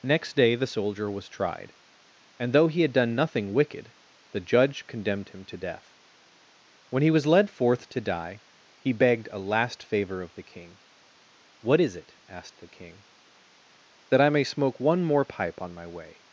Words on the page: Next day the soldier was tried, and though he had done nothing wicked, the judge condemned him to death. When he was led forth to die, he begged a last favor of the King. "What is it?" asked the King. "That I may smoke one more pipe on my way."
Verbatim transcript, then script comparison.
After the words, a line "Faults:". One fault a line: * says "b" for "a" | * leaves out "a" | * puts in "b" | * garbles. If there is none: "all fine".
Next day the soldier was tried, and though he had done nothing wicked, the judge condemned him to death. When he was led forth to die, he begged a last favor of the King. "What is it?" asked the King. "That I may smoke one more pipe on my way."
Faults:
all fine